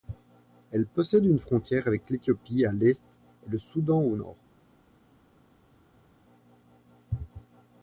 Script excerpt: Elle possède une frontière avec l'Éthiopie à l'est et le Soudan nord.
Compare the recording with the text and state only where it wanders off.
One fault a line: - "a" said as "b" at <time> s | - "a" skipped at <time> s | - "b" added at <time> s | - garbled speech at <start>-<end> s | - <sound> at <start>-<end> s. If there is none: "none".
- "au" added at 4.0 s